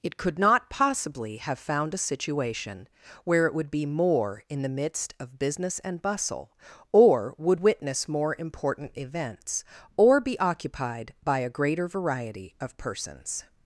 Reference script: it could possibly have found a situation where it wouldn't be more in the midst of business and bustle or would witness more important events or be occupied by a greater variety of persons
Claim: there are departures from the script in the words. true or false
true